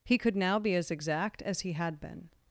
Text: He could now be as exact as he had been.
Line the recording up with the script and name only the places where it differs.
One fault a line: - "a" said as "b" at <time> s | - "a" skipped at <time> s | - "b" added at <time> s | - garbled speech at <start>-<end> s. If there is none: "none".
none